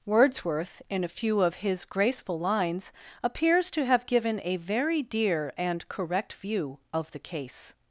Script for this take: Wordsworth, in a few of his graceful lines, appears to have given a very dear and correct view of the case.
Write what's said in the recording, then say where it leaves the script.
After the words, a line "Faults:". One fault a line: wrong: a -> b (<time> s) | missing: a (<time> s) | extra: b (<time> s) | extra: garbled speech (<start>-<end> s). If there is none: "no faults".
Wordsworth, in a few of his graceful lines, appears to have given a very dear and correct view of the case.
Faults:
no faults